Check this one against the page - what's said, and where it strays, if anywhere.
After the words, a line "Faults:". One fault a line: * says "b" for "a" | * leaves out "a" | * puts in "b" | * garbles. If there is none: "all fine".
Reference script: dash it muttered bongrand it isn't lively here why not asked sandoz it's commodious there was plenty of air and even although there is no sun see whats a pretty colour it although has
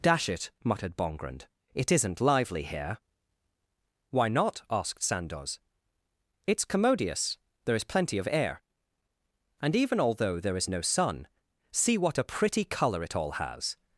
dash it muttered bongrand it isn't lively here why not asked sandoz it's commodious there is plenty of air and even although there is no sun see what a pretty colour it all has
Faults:
* says "is" for "was"
* says "what" for "whats"
* says "all" for "although"